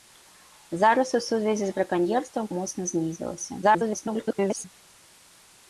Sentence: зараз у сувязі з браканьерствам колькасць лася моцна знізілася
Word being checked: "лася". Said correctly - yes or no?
no